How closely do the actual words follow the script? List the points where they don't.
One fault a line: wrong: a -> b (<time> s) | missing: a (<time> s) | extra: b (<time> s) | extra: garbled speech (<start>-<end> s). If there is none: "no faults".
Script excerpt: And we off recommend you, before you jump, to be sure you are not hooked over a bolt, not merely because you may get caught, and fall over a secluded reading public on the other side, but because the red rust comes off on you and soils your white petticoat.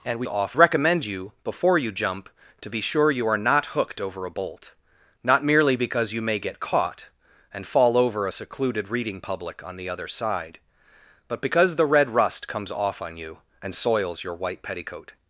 no faults